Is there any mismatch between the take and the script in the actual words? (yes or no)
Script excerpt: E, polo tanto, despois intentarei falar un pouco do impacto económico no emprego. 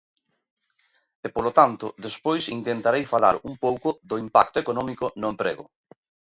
no